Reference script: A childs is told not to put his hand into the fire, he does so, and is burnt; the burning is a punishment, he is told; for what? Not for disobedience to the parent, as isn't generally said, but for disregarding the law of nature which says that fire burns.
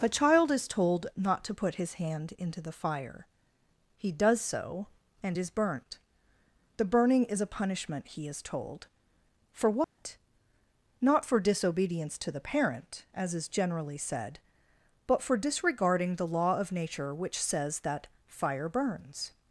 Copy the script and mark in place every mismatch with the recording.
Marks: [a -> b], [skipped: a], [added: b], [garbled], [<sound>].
A [childs -> child] is told not to put his hand into the fire, he does so, and is burnt; the burning is a punishment, he is told; for what? [dropout] Not for disobedience to the parent, as [isn't -> is] generally said, but for disregarding the law of nature which says that fire burns.